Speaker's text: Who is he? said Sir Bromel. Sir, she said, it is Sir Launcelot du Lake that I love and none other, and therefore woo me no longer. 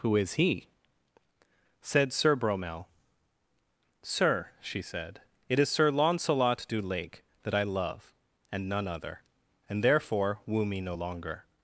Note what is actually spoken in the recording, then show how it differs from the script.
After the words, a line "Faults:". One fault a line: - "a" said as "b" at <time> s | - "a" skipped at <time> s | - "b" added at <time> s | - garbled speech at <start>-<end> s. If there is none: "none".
Who is he? said Sir Bromel. Sir, she said, it is Sir Launcelot du Lake that I love and none other, and therefore woo me no longer.
Faults:
none